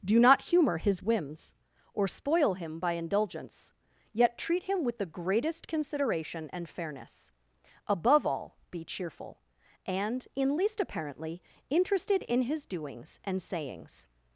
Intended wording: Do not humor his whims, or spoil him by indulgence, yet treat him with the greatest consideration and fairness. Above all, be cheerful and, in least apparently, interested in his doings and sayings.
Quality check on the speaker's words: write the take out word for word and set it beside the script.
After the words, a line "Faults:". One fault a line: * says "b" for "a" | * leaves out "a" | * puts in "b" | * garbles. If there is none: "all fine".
Do not humor his whims, or spoil him by indulgence, yet treat him with the greatest consideration and fairness. Above all, be cheerful and, in least apparently, interested in his doings and sayings.
Faults:
all fine